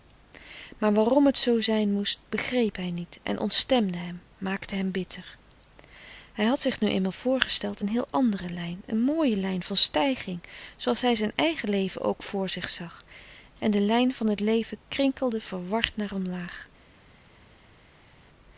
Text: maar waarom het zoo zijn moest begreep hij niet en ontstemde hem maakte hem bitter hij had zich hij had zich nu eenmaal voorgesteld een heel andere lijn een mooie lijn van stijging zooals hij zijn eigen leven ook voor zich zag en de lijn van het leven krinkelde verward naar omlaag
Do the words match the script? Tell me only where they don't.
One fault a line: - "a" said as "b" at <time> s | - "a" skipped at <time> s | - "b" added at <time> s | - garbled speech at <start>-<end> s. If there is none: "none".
- "hij had zich" skipped at 6.8 s